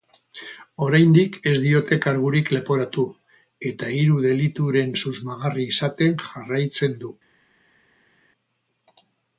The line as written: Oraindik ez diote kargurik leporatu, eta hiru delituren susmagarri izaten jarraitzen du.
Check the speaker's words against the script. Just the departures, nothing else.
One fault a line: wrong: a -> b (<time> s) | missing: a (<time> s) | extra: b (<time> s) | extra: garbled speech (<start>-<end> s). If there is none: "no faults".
no faults